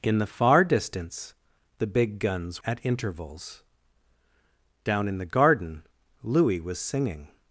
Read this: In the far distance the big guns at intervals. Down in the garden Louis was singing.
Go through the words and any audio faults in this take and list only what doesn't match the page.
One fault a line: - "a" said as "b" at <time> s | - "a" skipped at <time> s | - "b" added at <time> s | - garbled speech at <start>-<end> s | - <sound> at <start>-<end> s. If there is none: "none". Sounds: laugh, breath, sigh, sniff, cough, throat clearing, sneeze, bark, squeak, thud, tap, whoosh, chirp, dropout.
none